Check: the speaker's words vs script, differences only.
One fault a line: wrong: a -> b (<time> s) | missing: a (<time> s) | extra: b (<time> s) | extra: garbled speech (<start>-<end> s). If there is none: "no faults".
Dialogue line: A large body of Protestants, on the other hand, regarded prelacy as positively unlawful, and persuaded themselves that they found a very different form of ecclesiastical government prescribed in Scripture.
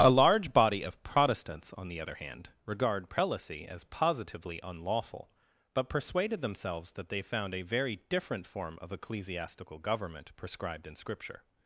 wrong: regarded -> regard (2.6 s)
wrong: and -> but (5.7 s)